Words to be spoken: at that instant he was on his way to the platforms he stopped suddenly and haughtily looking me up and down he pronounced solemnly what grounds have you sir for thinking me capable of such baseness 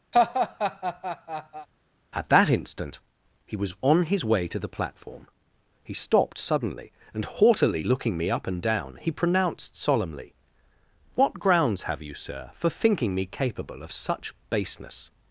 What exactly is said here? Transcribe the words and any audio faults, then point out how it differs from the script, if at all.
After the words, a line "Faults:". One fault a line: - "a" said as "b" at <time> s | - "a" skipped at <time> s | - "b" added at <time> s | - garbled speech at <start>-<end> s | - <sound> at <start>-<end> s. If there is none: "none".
at that instant he was on his way to the platform he stopped suddenly and haughtily looking me up and down he pronounced solemnly what grounds have you sir for thinking me capable of such baseness
Faults:
- laugh at 0.1-1.7 s
- "platforms" said as "platform" at 4.7 s